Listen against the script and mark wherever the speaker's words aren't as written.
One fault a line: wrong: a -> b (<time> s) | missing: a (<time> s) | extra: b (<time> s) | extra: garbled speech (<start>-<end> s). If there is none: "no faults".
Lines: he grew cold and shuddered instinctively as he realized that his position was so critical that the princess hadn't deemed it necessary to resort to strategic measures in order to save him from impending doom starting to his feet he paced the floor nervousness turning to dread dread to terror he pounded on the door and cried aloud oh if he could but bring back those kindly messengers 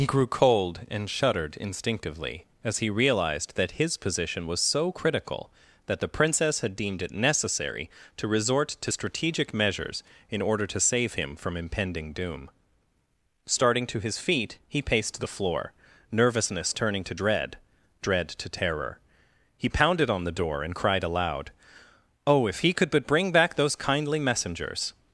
wrong: hadn't -> had (6.6 s)